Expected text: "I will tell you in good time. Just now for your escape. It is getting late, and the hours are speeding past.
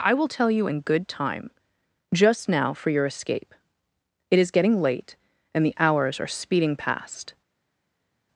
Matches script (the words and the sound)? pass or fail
pass